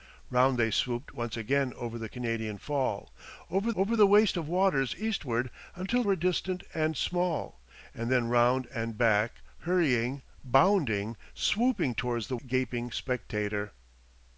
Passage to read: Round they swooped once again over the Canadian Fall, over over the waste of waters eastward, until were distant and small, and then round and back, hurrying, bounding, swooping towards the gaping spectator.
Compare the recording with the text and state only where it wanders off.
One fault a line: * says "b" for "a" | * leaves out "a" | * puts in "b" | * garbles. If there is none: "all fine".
all fine